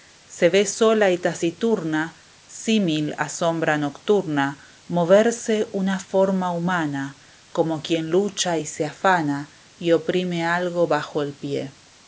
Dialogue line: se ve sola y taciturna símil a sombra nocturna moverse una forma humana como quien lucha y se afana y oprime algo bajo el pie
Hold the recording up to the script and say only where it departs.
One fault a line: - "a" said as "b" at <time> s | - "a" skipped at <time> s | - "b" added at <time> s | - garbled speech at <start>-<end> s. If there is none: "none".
none